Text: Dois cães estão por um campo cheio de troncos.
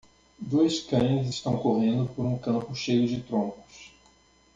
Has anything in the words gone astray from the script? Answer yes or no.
yes